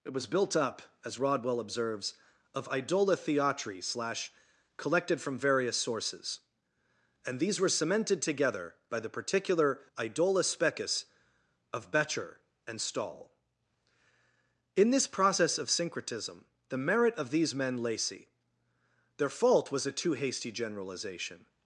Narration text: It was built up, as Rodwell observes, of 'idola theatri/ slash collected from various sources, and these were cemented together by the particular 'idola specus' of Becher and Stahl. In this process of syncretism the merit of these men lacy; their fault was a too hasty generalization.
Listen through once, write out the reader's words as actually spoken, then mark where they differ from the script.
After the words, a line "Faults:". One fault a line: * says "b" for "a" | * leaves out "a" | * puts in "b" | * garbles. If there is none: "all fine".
It was built up, as Rodwell observes, of 'idola theatri/ slash collected from various sources, and these were cemented together by the particular 'idola specus' of Becher and Stahl. In this process of syncretism the merit of these men lacy; their fault was a too hasty generalization.
Faults:
all fine